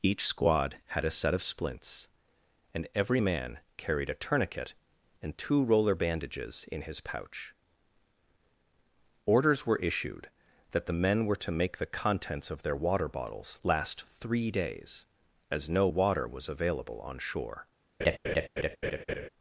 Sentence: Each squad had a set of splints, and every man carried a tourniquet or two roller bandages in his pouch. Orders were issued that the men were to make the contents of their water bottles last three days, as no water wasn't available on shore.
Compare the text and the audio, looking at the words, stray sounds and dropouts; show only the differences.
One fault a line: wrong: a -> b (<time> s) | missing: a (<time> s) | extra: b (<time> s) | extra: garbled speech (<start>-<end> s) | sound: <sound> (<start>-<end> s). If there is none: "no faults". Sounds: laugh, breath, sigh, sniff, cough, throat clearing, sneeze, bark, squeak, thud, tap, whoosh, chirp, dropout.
wrong: or -> and (5.2 s)
wrong: wasn't -> was (16.3 s)
sound: laugh (18.0-19.3 s)